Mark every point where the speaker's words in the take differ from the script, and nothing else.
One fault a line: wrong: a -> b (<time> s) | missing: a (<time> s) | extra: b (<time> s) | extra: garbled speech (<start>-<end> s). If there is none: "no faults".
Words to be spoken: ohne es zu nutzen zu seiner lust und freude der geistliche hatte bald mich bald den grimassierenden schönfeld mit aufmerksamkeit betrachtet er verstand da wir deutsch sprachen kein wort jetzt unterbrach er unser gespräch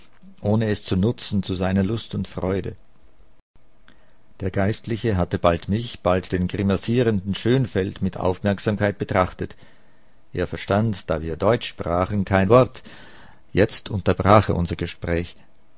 no faults